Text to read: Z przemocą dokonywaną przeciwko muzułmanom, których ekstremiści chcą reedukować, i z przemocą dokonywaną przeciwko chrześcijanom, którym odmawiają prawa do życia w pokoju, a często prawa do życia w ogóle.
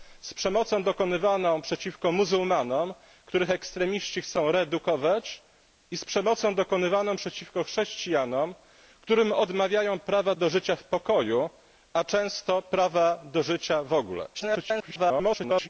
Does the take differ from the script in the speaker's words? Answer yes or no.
yes